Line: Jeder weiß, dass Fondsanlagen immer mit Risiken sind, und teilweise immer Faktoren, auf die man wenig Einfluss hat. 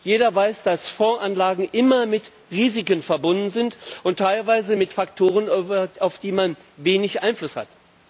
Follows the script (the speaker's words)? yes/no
no